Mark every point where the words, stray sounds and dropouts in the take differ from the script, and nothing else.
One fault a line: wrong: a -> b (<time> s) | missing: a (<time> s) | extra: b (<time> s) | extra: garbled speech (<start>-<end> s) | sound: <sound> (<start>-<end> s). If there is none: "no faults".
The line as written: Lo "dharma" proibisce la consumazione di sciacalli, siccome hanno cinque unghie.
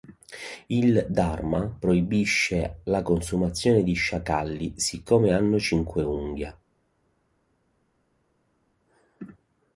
wrong: Lo -> Il (0.7 s)